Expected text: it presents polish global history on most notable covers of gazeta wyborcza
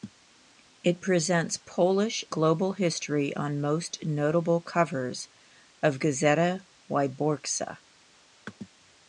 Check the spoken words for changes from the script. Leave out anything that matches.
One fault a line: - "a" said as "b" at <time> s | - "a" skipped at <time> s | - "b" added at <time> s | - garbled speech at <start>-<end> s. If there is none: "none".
none